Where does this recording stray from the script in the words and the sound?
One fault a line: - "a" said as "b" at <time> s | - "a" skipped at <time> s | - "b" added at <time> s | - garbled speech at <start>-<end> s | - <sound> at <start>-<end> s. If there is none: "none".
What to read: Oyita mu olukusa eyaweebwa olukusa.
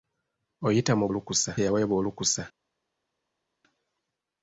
none